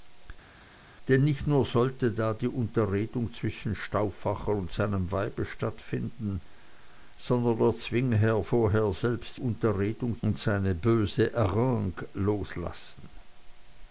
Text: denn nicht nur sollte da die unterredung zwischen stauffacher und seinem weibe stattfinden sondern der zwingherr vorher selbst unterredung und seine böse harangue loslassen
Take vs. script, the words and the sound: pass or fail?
pass